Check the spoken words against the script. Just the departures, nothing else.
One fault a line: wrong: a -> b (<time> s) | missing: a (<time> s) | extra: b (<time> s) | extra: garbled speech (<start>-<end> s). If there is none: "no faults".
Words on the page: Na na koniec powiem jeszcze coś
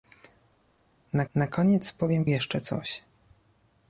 no faults